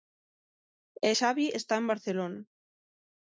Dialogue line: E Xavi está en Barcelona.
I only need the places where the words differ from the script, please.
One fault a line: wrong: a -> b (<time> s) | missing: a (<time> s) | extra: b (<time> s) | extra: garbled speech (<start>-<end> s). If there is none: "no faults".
no faults